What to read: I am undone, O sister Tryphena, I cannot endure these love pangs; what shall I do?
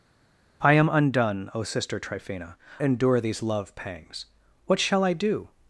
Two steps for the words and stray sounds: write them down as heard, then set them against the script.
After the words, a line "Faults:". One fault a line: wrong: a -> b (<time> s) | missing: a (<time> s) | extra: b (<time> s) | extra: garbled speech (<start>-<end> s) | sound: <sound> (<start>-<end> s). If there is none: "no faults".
I am undone, O sister Tryphena, endure these love pangs; what shall I do?
Faults:
missing: I cannot (2.5 s)